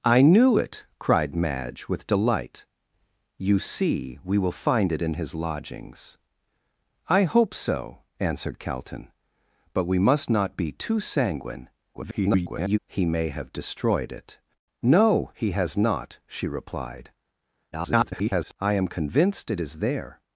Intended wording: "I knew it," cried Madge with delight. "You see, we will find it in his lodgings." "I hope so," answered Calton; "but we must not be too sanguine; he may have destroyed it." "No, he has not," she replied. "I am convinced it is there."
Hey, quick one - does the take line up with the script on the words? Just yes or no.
no